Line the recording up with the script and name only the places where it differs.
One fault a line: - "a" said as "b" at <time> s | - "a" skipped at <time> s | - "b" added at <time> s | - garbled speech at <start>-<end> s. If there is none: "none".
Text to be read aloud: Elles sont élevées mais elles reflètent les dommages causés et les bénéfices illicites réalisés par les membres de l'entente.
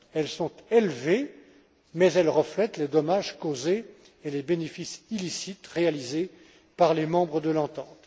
none